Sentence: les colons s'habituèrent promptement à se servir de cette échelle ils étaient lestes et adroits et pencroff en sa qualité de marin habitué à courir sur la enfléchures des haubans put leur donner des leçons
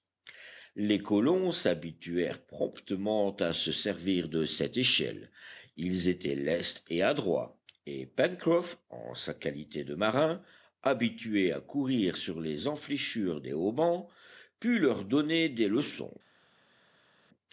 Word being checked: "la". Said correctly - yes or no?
no